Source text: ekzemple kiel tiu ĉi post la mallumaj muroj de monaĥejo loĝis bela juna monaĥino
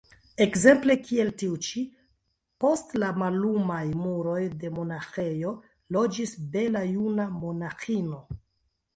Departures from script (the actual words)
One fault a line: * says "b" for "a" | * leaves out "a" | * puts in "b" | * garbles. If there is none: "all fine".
all fine